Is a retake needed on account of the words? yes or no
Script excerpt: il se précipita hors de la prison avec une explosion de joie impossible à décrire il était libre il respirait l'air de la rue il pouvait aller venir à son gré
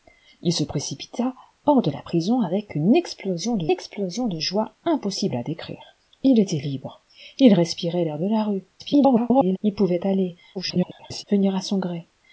yes